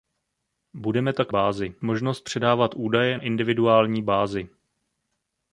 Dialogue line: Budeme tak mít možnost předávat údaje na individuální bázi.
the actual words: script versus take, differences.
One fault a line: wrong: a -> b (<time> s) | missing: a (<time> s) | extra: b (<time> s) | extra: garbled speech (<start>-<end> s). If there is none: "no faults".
wrong: mít -> bázi (1.3 s)
missing: na (3.2 s)